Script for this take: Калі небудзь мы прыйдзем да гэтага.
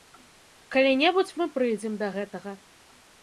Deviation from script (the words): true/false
false